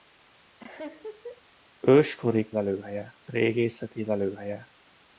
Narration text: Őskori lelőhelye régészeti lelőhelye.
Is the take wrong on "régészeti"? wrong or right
right